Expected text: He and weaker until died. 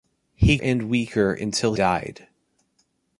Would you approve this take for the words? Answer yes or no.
yes